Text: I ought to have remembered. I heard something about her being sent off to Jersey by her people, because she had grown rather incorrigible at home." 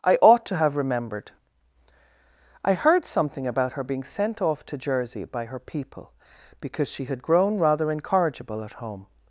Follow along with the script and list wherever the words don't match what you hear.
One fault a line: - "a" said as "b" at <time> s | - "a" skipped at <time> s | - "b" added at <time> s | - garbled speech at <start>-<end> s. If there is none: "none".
none